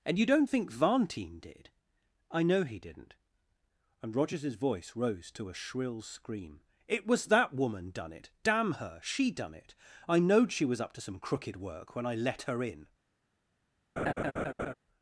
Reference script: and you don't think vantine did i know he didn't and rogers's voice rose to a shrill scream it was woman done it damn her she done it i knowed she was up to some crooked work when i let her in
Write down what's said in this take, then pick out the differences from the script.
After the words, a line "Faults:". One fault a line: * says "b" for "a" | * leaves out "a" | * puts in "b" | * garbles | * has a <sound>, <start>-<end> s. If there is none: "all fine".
and you don't think vantine did i know he didn't and rogers's voice rose to a shrill scream it was that woman done it damn her she done it i knowed she was up to some crooked work when i let her in
Faults:
* puts in "that"
* has a laugh, 14.0-14.7 s